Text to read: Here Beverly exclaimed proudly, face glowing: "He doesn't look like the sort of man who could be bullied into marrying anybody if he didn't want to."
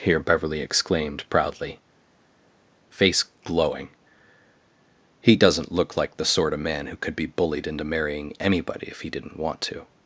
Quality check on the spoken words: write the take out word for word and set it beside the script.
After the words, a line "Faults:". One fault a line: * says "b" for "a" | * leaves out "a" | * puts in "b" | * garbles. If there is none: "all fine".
Here Beverly exclaimed proudly, face glowing: "He doesn't look like the sort of man who could be bullied into marrying anybody if he didn't want to."
Faults:
all fine